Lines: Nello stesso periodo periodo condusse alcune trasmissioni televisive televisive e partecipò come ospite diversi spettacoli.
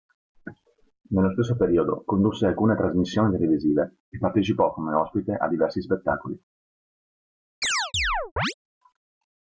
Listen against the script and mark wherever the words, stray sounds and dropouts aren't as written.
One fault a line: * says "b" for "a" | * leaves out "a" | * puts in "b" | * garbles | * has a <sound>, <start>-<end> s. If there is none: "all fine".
* leaves out "periodo"
* leaves out "televisive"
* puts in "a"
* has a chirp, 7.6-8.5 s